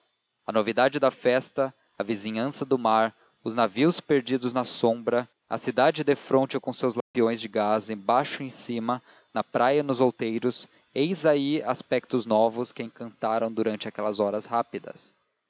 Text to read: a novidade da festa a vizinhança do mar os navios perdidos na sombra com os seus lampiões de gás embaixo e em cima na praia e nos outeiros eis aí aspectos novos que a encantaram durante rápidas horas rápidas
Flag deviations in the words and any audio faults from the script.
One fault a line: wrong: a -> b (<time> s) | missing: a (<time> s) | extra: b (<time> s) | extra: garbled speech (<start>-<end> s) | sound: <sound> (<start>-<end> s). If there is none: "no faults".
extra: a cidade defronte (5.5 s)
sound: dropout (7.0-7.1 s)
wrong: rápidas -> aquelas (13.9 s)